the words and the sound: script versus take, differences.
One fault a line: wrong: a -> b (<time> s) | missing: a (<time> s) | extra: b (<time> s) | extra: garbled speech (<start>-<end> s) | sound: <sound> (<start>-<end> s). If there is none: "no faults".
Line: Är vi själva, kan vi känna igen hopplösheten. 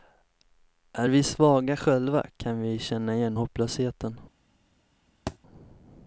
extra: svaga (1.2 s)
sound: thud (5.3-5.4 s)